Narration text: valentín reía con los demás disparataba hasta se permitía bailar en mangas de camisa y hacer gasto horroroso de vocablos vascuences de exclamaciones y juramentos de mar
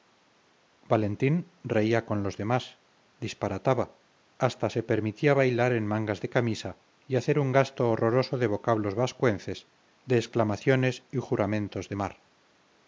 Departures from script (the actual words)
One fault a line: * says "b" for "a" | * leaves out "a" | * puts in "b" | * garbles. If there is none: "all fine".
* puts in "un"